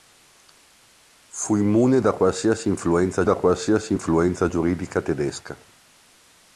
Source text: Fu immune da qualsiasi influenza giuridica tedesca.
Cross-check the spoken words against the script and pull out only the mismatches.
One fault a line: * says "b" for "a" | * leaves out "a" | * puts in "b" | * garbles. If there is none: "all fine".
* puts in "da qualsiasi influenza"